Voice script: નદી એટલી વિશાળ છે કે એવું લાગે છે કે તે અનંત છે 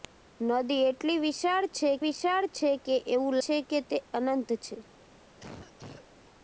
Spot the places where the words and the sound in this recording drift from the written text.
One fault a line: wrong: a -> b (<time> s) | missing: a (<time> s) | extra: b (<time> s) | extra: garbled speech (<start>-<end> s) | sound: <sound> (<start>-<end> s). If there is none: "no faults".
extra: વિશાળ છે (2.0 s)
missing: લાગે (3.3 s)
sound: cough (5.4-6.1 s)